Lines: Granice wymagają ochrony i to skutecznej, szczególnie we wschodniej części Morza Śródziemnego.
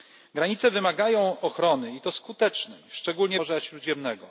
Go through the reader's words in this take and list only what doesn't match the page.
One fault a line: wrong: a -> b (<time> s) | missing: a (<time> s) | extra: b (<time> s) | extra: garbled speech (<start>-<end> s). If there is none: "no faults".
missing: we wschodniej części (3.4 s)